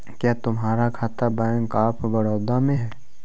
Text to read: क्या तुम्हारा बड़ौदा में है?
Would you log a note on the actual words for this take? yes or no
yes